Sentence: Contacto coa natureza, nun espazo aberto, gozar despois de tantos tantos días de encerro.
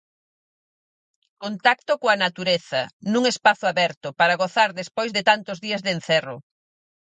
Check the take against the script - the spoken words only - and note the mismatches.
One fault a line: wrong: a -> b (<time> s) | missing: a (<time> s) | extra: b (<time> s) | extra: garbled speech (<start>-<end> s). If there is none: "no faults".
extra: para (4.2 s)
missing: tantos (5.6 s)